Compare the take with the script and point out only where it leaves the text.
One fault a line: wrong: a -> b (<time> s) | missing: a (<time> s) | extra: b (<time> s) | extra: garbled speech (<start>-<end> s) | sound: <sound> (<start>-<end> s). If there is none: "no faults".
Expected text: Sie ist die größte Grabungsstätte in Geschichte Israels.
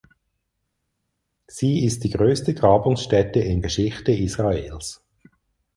no faults